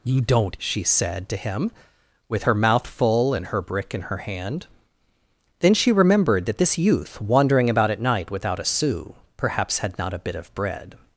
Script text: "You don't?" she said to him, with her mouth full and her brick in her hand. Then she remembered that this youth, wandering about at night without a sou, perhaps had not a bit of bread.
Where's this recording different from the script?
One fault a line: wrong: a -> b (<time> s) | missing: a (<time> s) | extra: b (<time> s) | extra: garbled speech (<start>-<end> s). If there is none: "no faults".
no faults